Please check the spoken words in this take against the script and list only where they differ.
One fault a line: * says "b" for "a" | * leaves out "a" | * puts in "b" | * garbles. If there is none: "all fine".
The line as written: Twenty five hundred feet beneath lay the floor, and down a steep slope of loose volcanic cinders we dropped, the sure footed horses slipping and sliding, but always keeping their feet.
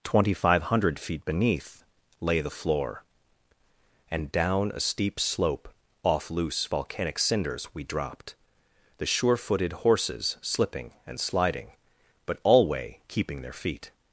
* says "off" for "of"
* says "alway" for "always"